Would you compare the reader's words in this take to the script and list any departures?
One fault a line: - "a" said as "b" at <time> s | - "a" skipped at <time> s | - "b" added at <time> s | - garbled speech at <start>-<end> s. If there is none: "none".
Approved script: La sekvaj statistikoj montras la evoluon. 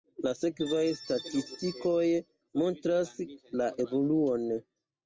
none